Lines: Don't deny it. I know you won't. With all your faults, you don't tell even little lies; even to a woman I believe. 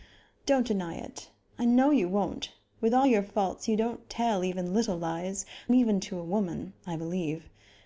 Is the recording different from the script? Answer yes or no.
no